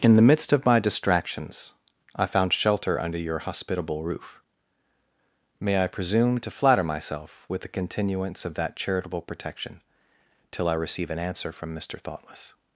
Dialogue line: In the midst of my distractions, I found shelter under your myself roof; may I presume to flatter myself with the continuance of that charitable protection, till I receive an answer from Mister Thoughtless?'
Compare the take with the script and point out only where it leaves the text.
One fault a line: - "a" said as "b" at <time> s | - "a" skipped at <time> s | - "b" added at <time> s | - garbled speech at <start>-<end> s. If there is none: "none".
- "myself" said as "hospitable" at 3.4 s